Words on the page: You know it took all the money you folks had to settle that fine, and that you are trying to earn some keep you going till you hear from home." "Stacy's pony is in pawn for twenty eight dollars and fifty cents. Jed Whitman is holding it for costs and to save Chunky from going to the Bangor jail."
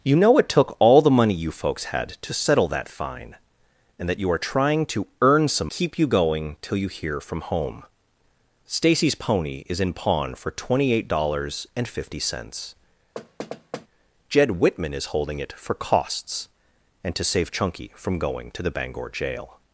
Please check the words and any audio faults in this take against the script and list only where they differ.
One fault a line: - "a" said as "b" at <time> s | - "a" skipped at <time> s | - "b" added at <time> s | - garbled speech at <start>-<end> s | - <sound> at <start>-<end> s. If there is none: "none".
- thud at 13.2-13.9 s